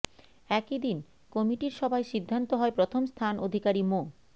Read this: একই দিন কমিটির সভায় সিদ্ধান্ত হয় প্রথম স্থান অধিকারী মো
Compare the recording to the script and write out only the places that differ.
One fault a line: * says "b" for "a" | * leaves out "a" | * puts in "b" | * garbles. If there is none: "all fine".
all fine